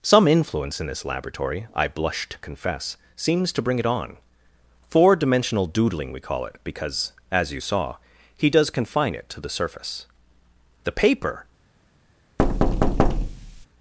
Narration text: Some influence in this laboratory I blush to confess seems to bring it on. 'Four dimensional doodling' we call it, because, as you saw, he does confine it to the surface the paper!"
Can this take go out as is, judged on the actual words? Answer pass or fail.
pass